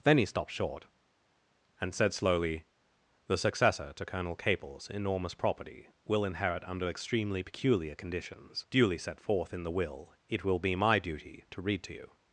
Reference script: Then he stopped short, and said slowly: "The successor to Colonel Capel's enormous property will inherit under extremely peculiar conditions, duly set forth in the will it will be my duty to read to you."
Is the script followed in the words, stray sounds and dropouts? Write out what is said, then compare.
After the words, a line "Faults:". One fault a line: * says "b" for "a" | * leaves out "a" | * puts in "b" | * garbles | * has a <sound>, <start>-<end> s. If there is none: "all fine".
Then he stopped short, and said slowly: "The successor to Colonel Capel's enormous property will inherit under extremely peculiar conditions, duly set forth in the will it will be my duty to read to you."
Faults:
all fine